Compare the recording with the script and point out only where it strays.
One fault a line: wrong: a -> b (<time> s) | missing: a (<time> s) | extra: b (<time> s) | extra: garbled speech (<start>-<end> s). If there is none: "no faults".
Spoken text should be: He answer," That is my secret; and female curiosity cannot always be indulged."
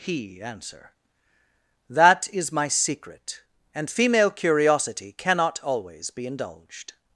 no faults